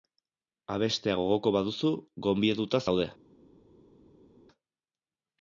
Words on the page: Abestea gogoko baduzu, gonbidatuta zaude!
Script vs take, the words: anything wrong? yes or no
no